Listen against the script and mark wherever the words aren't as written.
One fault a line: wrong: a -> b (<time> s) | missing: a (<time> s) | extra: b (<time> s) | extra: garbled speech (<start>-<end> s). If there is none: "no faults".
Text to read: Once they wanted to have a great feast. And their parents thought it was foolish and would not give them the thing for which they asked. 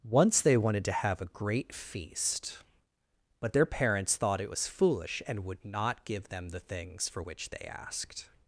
wrong: And -> But (3.4 s)
wrong: thing -> things (6.6 s)